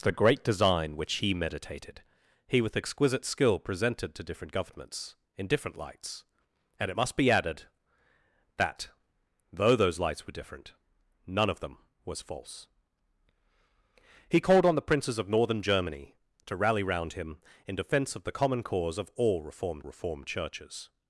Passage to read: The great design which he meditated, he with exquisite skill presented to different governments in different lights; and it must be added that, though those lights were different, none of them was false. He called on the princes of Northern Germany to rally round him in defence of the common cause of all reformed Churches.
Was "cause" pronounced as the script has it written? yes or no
yes